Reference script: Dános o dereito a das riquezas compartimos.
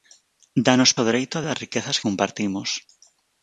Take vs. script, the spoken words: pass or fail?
pass